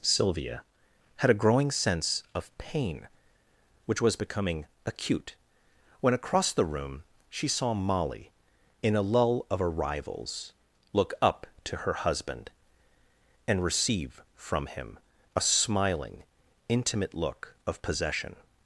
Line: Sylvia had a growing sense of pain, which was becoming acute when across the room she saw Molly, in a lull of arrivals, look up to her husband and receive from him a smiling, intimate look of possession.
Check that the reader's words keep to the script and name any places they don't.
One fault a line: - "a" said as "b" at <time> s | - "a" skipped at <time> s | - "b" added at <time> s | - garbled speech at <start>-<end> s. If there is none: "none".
none